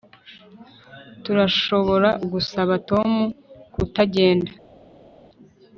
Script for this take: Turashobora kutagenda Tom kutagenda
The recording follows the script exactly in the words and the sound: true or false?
false